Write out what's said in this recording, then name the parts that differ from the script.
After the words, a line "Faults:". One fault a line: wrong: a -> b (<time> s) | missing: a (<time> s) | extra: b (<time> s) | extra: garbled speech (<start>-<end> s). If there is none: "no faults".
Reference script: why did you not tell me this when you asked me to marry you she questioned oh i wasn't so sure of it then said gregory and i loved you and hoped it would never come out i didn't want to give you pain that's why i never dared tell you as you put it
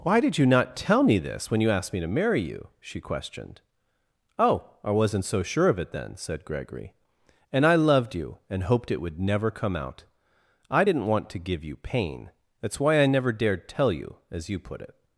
why did you not tell me this when you asked me to marry you she questioned oh i wasn't so sure of it then said gregory and i loved you and hoped it would never come out i didn't want to give you pain that's why i never dared tell you as you put it
Faults:
no faults